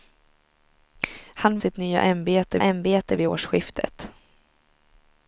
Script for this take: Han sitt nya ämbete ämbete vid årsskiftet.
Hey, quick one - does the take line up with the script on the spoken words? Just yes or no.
yes